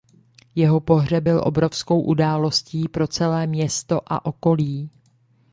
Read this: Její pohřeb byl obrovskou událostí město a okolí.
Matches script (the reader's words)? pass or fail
fail